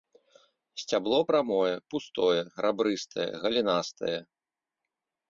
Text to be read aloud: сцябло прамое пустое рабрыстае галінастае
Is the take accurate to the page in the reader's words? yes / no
yes